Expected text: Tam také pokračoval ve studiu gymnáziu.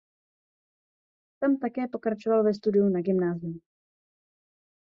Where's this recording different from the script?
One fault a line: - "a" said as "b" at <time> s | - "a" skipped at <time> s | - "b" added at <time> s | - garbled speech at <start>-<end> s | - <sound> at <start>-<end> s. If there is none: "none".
- "na" added at 2.9 s